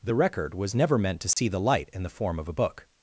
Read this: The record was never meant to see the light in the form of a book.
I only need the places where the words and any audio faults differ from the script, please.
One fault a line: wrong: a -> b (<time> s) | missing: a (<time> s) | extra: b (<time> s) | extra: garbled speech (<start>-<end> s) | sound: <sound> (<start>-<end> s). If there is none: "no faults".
sound: dropout (1.3-1.4 s)